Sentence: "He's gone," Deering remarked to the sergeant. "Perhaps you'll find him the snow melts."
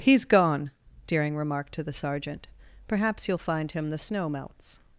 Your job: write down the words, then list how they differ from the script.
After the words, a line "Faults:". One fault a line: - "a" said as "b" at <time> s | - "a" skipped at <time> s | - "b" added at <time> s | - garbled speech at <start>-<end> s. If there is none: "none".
"He's gone," Deering remarked to the sergeant. "Perhaps you'll find him the snow melts."
Faults:
none